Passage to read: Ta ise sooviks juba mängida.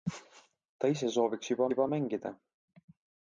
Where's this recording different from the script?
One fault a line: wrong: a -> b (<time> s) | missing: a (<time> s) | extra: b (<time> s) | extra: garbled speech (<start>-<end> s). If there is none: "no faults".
extra: juba (1.7 s)